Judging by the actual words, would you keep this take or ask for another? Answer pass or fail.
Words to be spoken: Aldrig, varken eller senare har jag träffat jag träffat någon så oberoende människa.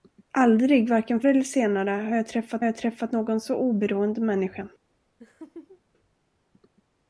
pass